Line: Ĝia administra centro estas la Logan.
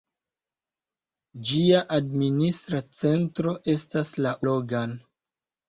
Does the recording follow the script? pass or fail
pass